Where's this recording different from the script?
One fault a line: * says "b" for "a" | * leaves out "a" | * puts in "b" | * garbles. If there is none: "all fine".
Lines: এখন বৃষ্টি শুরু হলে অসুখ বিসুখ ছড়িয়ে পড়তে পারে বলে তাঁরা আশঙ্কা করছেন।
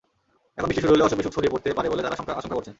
all fine